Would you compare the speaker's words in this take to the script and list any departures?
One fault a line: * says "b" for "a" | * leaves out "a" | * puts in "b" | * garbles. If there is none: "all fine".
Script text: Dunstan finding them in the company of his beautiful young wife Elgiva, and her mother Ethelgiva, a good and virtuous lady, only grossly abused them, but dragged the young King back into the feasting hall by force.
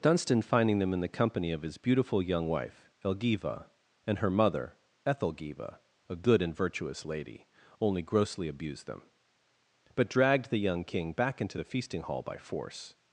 all fine